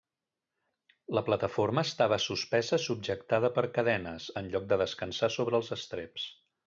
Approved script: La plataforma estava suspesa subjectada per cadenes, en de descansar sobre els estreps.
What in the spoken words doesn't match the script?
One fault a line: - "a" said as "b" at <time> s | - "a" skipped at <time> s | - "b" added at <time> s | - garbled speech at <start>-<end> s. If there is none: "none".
- "lloc" added at 4.5 s